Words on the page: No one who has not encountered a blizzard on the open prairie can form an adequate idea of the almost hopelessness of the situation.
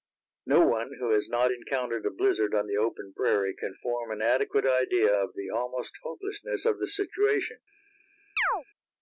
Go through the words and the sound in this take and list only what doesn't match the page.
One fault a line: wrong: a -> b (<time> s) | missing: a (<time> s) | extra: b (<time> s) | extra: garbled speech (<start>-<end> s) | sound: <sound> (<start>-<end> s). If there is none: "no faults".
sound: chirp (8.4-8.6 s)